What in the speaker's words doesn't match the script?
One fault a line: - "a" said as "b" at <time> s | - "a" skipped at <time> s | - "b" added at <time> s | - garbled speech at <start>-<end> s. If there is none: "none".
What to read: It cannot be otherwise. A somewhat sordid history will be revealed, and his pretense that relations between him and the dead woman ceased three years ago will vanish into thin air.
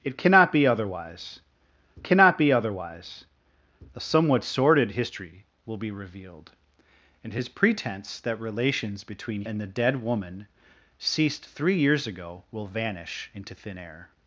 - "cannot be otherwise" added at 2.0 s
- "him" skipped at 9.4 s